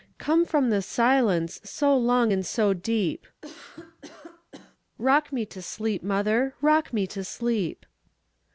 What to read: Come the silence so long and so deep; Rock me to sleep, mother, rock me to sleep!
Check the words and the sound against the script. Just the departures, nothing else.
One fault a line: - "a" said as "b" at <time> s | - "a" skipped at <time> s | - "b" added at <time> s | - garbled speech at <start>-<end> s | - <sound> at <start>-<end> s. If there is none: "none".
- "from" added at 0.4 s
- cough at 3.4-4.8 s